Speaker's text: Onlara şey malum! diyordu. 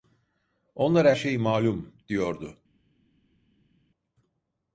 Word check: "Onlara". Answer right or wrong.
right